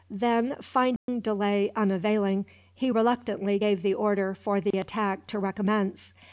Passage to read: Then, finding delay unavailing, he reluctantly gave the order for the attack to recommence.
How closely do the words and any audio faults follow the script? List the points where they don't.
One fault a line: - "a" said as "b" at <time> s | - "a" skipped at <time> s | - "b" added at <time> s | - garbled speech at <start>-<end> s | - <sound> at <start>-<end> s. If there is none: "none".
- dropout at 1.0-1.1 s
- dropout at 4.7-4.7 s